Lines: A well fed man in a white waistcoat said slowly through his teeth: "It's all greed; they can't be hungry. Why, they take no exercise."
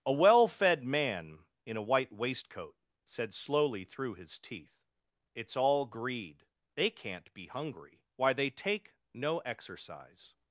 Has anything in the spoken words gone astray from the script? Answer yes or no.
no